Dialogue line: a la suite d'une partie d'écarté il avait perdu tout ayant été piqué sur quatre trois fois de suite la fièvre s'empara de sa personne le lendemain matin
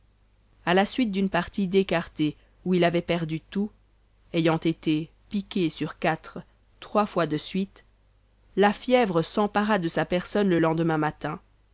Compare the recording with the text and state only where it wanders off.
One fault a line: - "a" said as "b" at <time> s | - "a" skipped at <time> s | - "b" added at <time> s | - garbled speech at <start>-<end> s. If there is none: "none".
- "où" added at 2.6 s